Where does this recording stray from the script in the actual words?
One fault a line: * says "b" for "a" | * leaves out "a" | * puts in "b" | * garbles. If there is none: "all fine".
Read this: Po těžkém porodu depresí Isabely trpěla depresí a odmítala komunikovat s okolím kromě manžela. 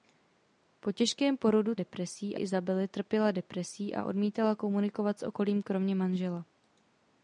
all fine